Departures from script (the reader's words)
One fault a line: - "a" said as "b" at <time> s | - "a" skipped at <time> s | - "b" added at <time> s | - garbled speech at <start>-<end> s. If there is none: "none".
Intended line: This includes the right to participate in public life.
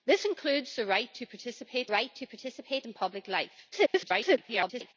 - "right to participate" added at 1.9 s
- garbled speech at 3.7-4.9 s